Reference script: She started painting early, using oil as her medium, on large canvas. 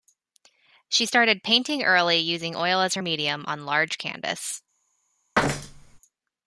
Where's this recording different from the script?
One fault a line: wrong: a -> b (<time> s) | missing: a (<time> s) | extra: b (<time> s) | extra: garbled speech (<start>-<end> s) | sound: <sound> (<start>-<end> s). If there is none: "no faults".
sound: thud (5.3-6.0 s)